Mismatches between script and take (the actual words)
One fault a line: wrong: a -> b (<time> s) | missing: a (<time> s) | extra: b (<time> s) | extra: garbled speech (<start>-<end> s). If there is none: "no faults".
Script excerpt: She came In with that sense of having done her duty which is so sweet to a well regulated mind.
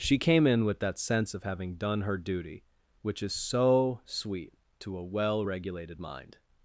no faults